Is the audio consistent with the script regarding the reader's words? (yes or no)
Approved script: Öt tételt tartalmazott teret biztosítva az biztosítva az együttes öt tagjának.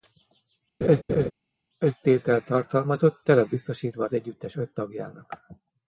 no